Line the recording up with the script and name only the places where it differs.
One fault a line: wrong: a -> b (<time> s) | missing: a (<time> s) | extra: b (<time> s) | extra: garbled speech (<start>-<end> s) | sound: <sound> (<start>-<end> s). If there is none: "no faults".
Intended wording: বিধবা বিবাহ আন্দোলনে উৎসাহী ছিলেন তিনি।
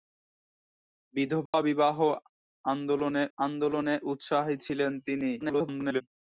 sound: dropout (1.5-1.5 s)
extra: আন্দোলনে (3.4 s)
extra: garbled speech (5.4-6.0 s)